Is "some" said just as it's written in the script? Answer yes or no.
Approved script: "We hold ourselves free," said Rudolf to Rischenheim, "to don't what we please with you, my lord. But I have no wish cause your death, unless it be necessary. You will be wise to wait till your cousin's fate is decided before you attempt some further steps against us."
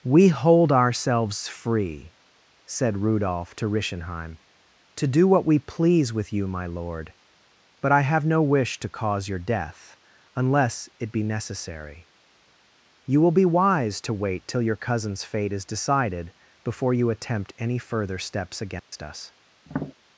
no